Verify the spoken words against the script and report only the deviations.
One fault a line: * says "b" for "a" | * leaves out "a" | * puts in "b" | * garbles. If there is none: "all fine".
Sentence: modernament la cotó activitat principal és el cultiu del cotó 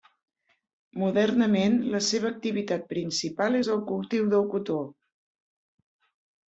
* says "seva" for "cotó"